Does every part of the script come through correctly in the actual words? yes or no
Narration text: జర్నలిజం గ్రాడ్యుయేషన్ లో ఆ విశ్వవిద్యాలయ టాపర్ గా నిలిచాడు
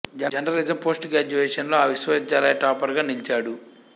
no